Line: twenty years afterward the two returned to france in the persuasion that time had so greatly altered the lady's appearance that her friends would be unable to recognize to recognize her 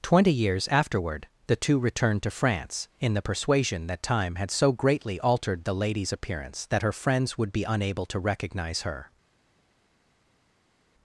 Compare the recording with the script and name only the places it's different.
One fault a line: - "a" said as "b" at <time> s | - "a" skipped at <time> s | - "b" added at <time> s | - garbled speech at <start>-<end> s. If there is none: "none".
- "to recognize" skipped at 8.8 s